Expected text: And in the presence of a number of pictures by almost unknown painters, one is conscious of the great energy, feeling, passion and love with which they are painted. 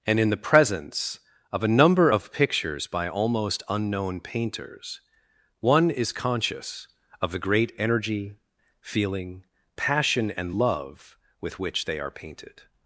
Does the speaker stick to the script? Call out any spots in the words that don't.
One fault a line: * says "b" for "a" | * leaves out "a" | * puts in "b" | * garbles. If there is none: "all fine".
all fine